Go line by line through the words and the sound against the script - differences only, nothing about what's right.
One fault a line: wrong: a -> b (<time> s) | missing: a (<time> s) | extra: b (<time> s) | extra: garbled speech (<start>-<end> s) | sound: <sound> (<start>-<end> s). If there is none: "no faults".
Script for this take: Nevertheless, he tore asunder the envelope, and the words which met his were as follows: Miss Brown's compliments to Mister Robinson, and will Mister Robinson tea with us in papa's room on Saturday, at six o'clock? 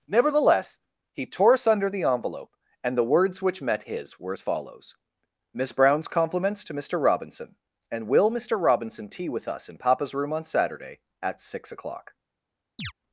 sound: chirp (12.8-12.9 s)